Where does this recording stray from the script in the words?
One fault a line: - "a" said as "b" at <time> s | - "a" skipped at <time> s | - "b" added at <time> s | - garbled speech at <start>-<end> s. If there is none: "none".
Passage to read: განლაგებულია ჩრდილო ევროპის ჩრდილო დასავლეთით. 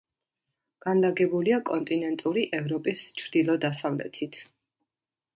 - "ჩრდილო" said as "კონტინენტური" at 1.7 s